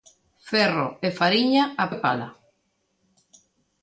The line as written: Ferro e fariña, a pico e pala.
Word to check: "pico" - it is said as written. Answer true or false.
false